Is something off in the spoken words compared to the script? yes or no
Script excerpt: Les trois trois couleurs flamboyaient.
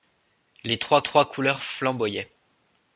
no